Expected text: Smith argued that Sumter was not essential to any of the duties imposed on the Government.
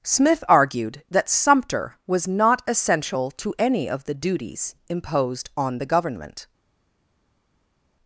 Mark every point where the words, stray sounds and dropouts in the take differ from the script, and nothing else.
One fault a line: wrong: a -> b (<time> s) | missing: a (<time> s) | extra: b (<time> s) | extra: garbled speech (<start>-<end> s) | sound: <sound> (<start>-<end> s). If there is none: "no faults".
no faults